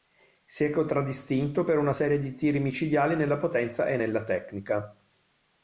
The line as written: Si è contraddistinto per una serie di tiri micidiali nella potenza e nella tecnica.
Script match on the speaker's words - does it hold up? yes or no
yes